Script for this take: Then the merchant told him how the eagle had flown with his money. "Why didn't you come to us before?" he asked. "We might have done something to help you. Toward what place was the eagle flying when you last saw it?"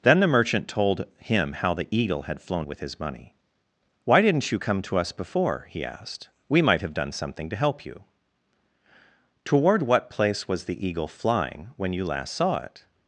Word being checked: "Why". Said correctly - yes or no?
yes